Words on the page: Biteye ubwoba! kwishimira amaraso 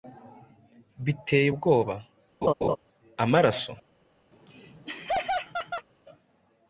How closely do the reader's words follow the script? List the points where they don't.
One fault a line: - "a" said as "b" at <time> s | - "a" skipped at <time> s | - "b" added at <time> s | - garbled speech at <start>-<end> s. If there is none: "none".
- "kwishimira" skipped at 1.9 s